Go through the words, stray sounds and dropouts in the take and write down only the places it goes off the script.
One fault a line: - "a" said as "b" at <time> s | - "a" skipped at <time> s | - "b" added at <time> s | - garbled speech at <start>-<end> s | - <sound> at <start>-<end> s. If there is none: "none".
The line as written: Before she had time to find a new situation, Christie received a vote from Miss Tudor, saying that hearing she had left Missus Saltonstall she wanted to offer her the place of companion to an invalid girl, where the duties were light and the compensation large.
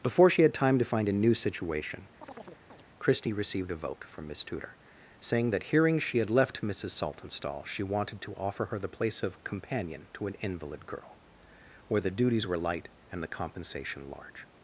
- chirp at 2.2-2.8 s